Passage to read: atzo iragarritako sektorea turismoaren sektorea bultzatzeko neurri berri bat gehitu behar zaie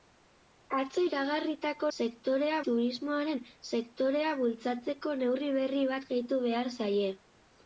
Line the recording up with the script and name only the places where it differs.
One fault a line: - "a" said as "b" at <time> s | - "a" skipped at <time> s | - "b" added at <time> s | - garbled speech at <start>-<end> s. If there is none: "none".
none